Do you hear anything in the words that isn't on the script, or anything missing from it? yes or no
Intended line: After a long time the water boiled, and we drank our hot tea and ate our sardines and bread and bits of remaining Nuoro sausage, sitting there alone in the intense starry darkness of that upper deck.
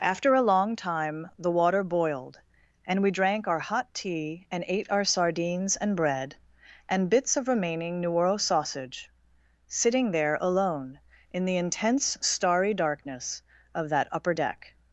no